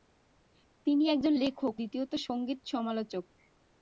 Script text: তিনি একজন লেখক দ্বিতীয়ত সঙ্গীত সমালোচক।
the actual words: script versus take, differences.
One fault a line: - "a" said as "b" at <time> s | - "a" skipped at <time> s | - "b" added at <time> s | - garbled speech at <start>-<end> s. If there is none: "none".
none